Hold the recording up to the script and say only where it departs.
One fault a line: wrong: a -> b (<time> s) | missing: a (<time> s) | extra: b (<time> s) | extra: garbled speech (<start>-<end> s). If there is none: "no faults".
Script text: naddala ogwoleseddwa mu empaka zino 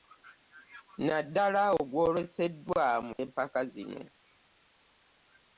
no faults